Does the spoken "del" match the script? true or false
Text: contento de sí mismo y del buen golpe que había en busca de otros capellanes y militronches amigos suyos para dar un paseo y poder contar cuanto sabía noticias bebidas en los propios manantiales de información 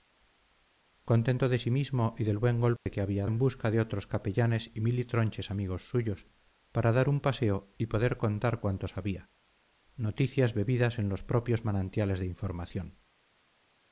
true